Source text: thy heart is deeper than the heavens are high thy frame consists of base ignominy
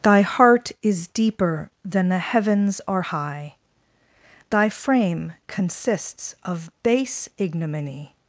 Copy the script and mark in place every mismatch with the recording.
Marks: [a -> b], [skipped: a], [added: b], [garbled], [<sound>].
thy heart is deeper than the heavens are high thy frame consists of base ignominy